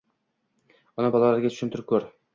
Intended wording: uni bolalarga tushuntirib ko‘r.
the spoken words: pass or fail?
pass